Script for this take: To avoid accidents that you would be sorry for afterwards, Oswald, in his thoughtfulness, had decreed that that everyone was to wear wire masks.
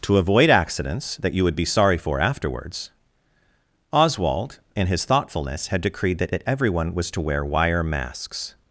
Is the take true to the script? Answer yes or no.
yes